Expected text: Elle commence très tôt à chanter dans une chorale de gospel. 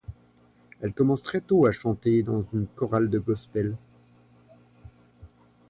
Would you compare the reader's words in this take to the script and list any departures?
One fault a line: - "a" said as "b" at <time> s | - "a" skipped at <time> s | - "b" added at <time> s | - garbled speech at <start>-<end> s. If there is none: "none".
none